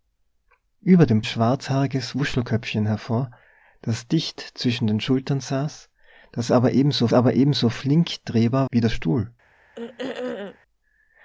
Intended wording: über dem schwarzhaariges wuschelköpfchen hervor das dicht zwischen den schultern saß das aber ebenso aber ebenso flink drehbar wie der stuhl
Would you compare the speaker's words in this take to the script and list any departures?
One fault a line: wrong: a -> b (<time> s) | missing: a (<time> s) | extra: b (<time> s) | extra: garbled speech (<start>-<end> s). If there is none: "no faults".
no faults